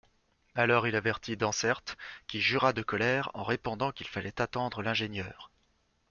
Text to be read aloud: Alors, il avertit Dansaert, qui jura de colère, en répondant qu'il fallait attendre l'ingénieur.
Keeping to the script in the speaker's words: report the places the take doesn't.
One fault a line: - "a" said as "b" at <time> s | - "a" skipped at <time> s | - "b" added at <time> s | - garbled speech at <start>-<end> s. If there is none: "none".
none